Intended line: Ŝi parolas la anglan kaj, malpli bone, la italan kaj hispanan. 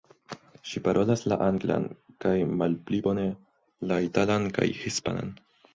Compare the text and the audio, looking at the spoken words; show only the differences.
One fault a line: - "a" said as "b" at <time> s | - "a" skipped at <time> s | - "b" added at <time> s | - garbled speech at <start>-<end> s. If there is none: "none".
none